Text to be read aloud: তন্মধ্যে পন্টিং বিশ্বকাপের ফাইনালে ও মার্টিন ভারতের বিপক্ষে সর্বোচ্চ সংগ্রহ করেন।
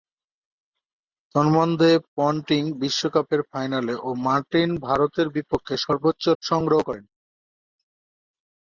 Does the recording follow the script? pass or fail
pass